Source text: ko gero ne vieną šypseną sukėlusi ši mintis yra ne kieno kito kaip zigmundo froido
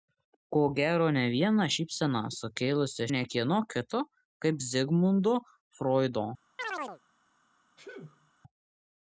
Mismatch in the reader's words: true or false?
true